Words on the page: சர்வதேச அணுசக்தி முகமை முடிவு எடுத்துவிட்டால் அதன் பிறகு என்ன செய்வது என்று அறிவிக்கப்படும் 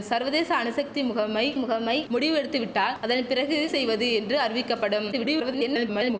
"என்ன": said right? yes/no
no